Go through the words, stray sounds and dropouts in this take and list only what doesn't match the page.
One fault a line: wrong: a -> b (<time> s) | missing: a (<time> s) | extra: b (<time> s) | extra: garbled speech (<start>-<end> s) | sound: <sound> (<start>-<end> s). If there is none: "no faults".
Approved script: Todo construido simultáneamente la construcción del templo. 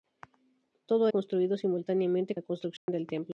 sound: dropout (2.8-2.9 s)